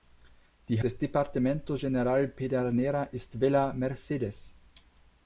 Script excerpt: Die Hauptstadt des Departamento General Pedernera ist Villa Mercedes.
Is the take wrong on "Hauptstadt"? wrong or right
wrong